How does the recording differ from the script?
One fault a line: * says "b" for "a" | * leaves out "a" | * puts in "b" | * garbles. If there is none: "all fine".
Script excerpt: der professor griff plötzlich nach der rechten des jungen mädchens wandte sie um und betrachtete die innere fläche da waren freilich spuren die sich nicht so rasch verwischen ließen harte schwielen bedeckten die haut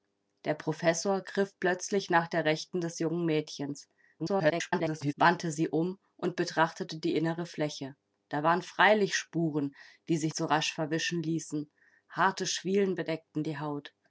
* garbles
* leaves out "nicht"